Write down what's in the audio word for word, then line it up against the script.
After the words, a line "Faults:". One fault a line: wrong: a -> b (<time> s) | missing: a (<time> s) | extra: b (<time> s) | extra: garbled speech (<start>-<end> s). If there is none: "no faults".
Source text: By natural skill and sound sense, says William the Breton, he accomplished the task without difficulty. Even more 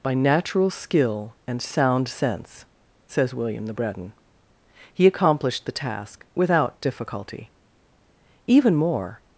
By natural skill and sound sense, says William the Breton, he accomplished the task without difficulty. Even more
Faults:
no faults